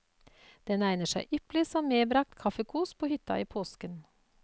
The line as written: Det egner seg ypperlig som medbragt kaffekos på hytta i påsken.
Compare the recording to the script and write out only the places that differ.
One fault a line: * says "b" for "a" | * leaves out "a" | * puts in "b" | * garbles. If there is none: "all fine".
* says "Den" for "Det"